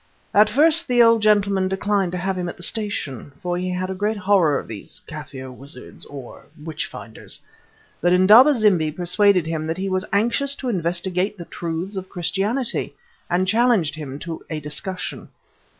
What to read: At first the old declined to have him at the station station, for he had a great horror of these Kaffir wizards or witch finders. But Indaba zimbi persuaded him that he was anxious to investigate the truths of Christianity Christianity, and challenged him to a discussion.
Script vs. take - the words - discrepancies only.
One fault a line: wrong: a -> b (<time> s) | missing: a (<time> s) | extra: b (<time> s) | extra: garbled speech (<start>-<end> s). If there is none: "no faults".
extra: gentleman (1.2 s)
missing: station (3.3 s)
missing: Christianity (12.9 s)